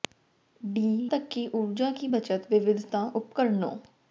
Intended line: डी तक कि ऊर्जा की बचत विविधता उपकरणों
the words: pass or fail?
pass